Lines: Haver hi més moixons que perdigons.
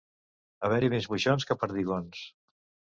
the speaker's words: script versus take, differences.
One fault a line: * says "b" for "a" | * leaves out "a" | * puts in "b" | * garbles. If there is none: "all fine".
all fine